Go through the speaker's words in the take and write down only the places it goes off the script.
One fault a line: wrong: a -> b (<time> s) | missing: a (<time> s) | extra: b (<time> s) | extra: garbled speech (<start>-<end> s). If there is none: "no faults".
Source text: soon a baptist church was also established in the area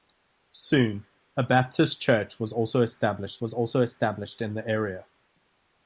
extra: was also established (3.4 s)